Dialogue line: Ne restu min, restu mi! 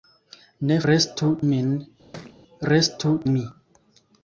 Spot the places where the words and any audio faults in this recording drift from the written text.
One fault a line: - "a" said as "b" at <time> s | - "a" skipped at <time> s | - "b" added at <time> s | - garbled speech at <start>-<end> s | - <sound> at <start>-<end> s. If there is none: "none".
- thud at 2.1-2.4 s